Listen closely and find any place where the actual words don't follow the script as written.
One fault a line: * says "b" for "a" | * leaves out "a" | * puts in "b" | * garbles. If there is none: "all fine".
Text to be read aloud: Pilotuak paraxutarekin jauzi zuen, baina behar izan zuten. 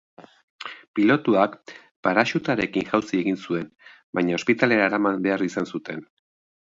* puts in "egin"
* puts in "ospitalera eraman"